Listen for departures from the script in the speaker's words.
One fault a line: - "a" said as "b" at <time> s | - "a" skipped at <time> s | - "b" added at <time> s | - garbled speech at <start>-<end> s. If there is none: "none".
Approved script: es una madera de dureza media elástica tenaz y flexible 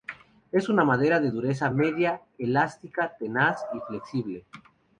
none